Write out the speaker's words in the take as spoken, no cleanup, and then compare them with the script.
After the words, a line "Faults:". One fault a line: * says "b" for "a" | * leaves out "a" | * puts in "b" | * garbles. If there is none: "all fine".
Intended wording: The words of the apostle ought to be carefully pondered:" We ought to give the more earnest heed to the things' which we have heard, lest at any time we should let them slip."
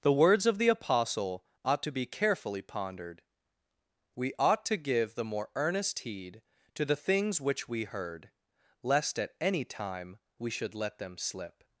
The words of the apostle ought to be carefully pondered:" We ought to give the more earnest heed to the things' which we heard, lest at any time we should let them slip."
Faults:
* leaves out "have"